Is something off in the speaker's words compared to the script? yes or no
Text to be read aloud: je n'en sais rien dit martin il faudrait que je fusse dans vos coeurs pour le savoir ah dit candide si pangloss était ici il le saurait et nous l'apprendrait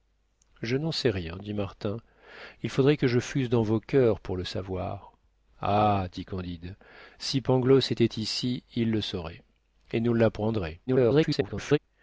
yes